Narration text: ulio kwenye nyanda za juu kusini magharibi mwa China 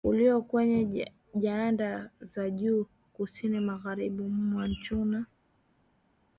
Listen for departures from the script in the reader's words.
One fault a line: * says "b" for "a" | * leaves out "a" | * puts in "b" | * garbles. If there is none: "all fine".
all fine